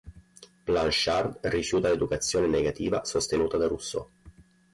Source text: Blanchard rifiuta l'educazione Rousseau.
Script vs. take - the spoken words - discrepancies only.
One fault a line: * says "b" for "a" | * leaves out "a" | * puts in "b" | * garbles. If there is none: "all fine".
* puts in "negativa sostenuta da"